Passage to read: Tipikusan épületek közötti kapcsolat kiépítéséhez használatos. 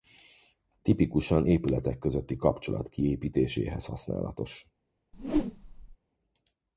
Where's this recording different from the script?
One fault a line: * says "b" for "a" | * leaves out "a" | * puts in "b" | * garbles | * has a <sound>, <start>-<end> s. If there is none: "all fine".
* has a whoosh, 5.1-6.0 s